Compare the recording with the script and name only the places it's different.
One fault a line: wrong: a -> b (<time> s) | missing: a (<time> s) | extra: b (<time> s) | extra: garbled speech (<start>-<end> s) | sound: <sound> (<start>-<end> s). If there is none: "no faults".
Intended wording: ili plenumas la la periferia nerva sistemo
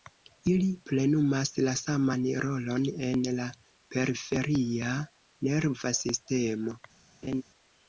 extra: saman rolon en (1.8 s)
sound: laugh (7.2-7.4 s)